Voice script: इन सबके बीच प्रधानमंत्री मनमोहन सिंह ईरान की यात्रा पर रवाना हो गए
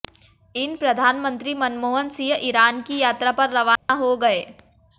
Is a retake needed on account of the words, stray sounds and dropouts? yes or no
yes